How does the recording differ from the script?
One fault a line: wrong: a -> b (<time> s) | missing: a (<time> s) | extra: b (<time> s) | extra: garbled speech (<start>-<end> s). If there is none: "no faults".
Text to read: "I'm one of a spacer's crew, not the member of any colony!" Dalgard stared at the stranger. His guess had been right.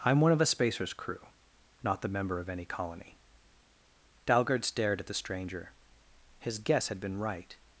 no faults